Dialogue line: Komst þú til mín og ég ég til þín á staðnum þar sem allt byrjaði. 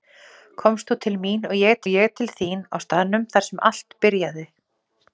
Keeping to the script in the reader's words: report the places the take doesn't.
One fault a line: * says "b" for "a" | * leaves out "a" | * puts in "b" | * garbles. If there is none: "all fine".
all fine